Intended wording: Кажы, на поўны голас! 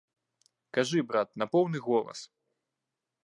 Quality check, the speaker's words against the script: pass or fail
fail